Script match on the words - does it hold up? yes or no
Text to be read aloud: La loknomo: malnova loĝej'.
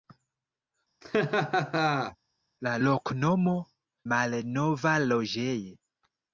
yes